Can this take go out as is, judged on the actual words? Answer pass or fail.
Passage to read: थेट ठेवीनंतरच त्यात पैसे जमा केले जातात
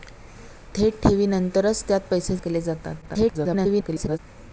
fail